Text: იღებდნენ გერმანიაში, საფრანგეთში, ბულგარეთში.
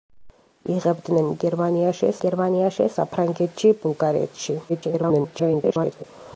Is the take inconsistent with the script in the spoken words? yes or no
yes